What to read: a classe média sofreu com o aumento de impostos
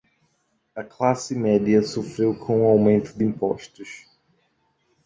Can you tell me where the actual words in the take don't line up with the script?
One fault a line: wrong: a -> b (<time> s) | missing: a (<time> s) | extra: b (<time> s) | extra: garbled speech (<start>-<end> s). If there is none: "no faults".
no faults